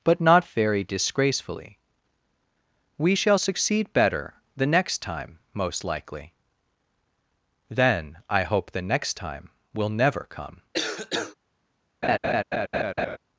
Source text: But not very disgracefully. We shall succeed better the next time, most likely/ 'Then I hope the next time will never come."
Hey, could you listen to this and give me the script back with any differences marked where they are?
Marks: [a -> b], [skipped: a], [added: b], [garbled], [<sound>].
But not very disgracefully. We shall succeed better the next time, most likely/ 'Then I hope the next time will never come." [cough] [laugh]